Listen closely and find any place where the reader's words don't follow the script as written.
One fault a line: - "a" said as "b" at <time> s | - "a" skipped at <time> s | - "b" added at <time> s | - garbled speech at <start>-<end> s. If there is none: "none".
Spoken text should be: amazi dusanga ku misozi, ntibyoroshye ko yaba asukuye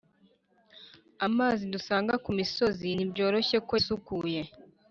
- "yaba" skipped at 3.7 s